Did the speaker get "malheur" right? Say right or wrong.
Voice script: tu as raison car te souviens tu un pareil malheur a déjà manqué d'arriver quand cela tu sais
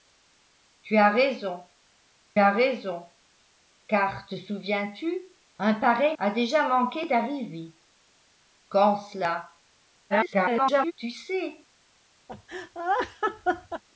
wrong